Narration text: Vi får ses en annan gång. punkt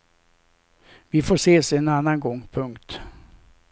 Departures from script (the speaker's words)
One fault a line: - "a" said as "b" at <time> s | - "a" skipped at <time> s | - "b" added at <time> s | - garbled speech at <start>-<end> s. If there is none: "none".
none